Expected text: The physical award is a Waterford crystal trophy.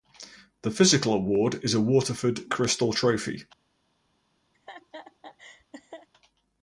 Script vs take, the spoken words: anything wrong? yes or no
no